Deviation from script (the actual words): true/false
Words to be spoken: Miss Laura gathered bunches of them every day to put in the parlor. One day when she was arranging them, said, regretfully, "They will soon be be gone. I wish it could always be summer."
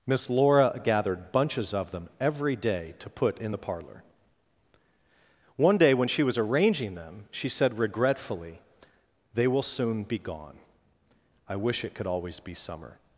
true